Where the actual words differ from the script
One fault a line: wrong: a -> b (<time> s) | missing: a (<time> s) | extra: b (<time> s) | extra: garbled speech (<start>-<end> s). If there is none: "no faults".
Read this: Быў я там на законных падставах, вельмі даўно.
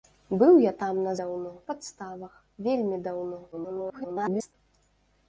wrong: законных -> даўно (1.2 s)
extra: garbled speech (3.5-4.5 s)